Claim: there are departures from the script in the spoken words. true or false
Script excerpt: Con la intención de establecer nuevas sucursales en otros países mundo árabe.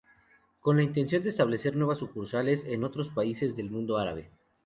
true